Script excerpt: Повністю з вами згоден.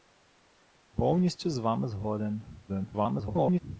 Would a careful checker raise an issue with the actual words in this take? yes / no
yes